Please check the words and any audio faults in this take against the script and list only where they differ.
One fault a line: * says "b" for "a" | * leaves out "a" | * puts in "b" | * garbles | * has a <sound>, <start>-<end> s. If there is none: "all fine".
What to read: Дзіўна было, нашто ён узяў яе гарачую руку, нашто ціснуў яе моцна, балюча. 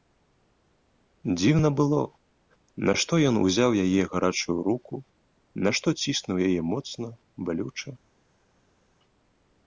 all fine